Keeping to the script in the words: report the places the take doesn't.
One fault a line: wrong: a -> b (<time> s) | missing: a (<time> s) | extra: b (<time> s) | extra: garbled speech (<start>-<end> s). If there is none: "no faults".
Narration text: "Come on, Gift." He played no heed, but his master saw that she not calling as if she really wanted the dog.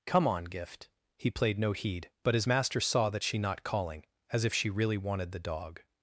no faults